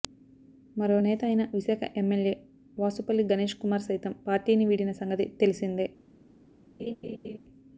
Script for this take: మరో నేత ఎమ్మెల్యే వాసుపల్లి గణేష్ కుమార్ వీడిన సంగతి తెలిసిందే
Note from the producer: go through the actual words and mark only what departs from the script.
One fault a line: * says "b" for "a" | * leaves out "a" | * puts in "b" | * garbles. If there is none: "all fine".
* puts in "అయిన విశాఖ"
* puts in "సైతం పార్టీని"